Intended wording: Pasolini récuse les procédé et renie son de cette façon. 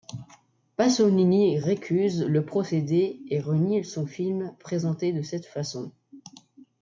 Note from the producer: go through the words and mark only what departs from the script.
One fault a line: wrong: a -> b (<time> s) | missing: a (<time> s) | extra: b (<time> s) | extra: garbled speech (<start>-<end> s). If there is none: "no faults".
wrong: les -> le (2.2 s)
extra: film présenté (4.1 s)